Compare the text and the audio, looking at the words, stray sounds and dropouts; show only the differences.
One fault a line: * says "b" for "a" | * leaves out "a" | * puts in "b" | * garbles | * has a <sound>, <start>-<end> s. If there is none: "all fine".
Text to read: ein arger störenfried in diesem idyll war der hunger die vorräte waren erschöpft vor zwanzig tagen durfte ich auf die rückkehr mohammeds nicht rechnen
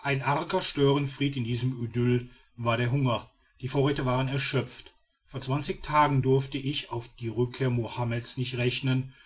all fine